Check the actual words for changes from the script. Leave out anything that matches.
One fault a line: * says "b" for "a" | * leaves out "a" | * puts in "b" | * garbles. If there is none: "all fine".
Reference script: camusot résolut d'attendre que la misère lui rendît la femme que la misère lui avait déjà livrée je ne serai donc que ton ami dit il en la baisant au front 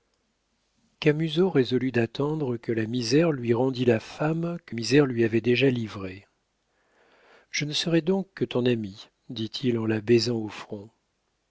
* leaves out "la"